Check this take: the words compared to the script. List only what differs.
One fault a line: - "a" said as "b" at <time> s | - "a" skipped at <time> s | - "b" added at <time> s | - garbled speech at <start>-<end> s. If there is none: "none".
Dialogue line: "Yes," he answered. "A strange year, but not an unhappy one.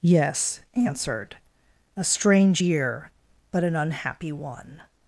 - "he" skipped at 0.6 s
- "not" skipped at 3.6 s